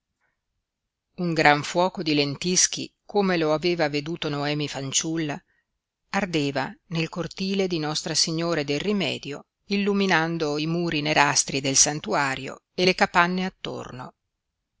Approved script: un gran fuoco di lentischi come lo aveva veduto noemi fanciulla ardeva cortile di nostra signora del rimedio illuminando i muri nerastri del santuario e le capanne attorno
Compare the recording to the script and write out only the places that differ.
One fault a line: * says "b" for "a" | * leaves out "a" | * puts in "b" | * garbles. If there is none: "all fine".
* puts in "nel"